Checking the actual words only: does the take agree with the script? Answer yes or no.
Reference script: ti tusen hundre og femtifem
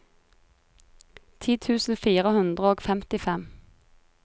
no